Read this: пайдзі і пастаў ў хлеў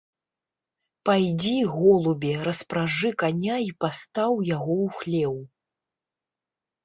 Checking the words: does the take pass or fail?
fail